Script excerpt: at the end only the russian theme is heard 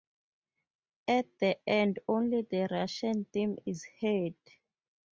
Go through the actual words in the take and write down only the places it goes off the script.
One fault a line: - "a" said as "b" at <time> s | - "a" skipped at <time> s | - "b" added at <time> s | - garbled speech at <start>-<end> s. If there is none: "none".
none